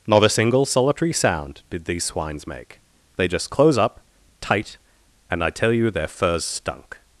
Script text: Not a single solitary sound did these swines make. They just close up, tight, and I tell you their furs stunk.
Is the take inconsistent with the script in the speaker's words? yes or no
no